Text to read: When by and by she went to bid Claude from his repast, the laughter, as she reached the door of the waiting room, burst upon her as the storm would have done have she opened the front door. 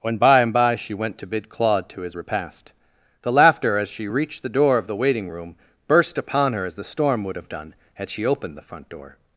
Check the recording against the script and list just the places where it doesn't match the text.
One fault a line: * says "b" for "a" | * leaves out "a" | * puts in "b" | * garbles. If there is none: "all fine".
* says "to" for "from"
* says "had" for "have"